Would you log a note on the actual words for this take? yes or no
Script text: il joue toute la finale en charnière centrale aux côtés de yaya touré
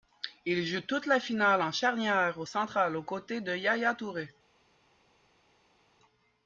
no